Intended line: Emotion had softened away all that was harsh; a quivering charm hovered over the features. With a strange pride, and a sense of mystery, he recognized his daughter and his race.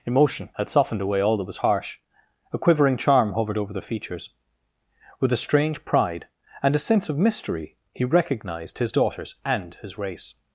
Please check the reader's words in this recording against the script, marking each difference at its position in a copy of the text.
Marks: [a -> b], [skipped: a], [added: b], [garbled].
Emotion had softened away all that was harsh; a quivering charm hovered over the features. With a strange pride, and a sense of mystery, he recognized his [daughter -> daughters] and his race.